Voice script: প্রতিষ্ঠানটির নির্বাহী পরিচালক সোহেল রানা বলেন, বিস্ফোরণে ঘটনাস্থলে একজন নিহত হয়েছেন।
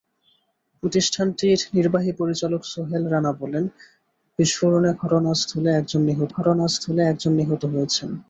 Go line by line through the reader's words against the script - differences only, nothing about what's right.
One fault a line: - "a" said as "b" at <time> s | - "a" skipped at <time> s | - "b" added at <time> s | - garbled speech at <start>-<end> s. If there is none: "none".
- "ঘটনাস্থলে একজন নিহত" added at 6.3 s